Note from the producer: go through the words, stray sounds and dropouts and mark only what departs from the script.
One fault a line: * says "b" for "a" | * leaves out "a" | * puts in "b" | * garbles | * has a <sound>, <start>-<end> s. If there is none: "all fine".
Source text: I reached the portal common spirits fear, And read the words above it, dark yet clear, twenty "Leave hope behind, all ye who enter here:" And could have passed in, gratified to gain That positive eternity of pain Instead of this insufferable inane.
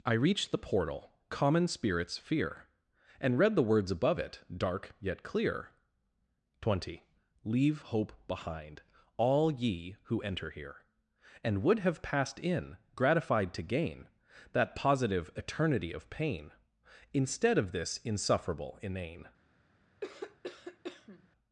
* says "would" for "could"
* has a cough, 20.0-21.3 s